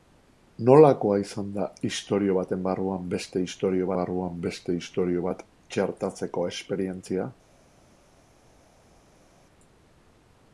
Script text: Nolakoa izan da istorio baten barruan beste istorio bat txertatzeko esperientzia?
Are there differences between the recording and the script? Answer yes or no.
yes